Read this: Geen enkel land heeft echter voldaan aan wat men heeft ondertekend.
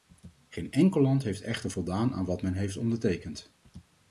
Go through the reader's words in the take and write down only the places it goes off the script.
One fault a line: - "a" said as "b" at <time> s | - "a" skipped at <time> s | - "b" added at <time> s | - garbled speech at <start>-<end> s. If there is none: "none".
none